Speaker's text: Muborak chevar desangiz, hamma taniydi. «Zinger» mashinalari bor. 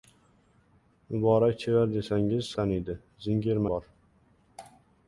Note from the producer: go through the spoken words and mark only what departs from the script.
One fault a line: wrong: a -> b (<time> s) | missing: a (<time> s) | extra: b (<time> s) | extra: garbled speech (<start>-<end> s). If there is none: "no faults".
missing: hamma (2.5 s)
missing: mashinalari (3.6 s)